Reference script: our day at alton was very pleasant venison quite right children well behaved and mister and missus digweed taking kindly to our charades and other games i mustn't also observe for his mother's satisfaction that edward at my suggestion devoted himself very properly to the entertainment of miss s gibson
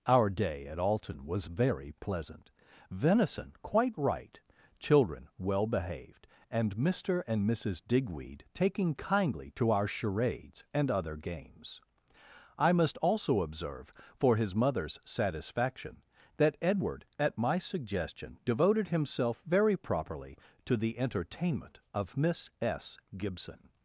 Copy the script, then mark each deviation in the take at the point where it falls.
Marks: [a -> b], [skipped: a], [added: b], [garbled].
our day at alton was very pleasant venison quite right children well behaved and mister and missus digweed taking kindly to our charades and other games i [mustn't -> must] also observe for his mother's satisfaction that edward at my suggestion devoted himself very properly to the entertainment of miss s gibson